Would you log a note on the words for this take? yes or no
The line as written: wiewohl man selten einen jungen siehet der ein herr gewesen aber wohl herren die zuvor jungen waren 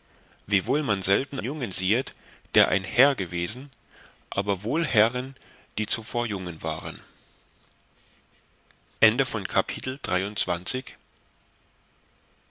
yes